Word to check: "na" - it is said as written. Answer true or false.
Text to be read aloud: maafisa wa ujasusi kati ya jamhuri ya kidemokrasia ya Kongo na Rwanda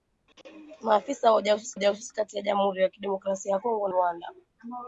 false